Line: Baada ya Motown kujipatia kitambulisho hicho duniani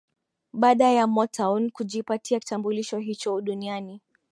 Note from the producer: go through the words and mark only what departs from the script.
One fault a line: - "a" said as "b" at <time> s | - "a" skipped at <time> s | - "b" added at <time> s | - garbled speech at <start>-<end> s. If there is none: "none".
none